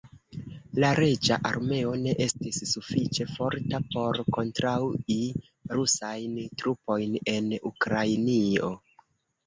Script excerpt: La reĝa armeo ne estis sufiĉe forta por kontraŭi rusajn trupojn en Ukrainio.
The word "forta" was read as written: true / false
true